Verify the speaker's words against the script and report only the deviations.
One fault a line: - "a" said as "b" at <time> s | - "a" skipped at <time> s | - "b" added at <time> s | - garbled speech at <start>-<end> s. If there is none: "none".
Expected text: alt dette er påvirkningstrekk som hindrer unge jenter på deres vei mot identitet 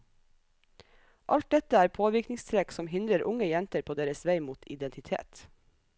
none